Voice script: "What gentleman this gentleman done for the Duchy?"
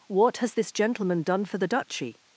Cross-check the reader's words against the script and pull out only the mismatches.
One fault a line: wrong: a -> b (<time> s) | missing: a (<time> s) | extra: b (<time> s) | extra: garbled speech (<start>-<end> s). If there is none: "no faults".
wrong: gentleman -> has (0.4 s)